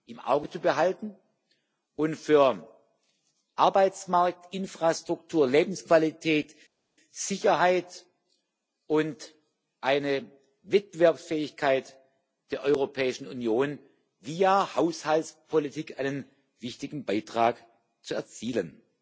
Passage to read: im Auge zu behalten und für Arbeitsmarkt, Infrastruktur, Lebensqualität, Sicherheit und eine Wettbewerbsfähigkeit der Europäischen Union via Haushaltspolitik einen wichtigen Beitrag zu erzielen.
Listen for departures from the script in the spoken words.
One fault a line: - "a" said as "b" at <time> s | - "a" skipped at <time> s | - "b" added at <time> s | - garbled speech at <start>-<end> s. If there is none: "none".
none